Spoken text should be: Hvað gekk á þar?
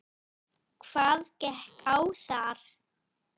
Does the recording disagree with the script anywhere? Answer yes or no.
no